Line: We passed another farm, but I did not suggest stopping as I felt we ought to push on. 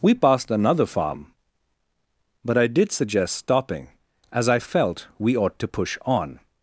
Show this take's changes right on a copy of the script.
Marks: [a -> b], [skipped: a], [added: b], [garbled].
We passed another farm, but I did [skipped: not] suggest stopping as I felt we ought to push on.